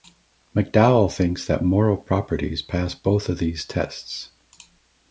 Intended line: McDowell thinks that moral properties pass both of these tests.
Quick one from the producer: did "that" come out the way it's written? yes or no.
yes